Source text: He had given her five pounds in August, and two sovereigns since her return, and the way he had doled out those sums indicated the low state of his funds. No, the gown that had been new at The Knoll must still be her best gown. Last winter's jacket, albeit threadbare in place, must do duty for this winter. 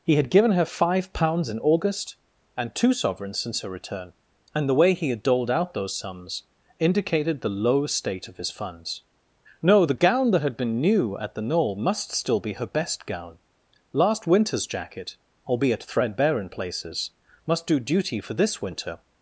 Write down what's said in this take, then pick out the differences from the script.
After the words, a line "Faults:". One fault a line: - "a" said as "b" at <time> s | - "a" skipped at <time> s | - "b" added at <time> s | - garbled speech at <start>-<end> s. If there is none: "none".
He had given her five pounds in August, and two sovereigns since her return, and the way he had doled out those sums indicated the low state of his funds. No, the gown that had been new at The Knoll must still be her best gown. Last winter's jacket, albeit threadbare in places, must do duty for this winter.
Faults:
- "place" said as "places" at 16.5 s